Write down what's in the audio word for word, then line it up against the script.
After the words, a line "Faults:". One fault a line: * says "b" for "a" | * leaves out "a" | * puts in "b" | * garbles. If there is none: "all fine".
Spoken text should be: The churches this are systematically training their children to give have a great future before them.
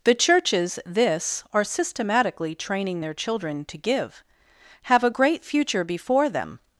The churches this are systematically training their children to give have a great future before them.
Faults:
all fine